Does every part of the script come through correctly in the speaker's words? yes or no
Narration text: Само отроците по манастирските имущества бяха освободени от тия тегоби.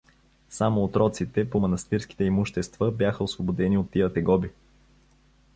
yes